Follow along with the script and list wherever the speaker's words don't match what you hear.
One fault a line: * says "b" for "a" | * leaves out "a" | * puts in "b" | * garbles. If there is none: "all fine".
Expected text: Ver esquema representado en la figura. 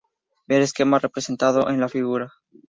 all fine